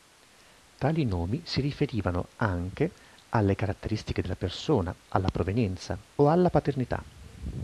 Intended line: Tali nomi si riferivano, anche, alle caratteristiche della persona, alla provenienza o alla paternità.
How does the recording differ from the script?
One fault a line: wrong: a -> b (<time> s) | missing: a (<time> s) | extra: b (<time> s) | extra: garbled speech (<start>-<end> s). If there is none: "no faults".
no faults